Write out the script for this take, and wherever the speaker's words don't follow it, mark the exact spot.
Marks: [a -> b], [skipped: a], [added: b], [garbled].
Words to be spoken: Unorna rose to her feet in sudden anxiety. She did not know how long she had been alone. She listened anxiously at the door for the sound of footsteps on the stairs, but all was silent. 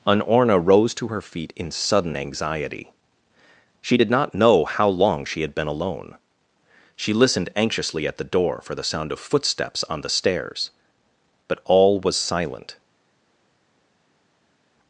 Unorna rose to her feet in sudden anxiety. She did not know how long she had been alone. She listened anxiously at the door for the sound of footsteps on the stairs, but all was silent.